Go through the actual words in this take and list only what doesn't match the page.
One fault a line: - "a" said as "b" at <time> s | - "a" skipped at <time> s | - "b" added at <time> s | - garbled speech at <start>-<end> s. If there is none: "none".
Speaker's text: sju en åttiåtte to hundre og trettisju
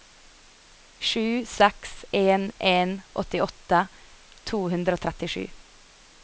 - "seks en" added at 1.4 s